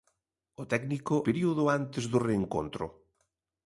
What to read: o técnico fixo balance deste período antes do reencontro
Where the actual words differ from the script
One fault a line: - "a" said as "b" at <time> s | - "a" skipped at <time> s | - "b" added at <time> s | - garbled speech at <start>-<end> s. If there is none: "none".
- "fixo balance deste" skipped at 1.1 s